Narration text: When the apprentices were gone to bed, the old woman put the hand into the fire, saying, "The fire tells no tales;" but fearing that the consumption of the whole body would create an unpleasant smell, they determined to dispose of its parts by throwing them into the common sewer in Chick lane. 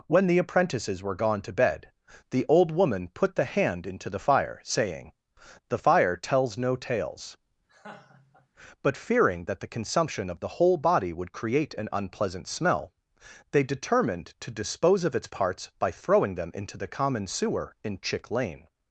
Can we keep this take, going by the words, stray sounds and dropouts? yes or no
no